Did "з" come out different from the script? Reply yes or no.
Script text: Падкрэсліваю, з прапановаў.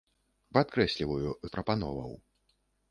no